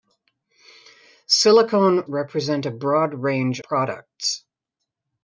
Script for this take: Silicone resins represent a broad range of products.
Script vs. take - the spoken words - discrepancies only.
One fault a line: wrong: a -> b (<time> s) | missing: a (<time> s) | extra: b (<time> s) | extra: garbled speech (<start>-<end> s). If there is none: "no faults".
missing: resins (2.0 s)
missing: of (3.6 s)